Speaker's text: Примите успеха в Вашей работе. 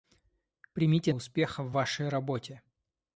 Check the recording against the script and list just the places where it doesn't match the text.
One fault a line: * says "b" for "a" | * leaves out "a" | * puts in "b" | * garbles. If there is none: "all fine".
all fine